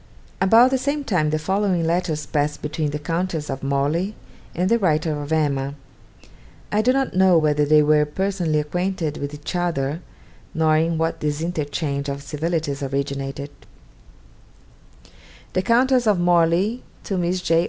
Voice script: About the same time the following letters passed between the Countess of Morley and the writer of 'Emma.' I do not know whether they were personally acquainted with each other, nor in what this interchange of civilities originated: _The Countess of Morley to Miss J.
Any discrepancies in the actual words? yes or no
no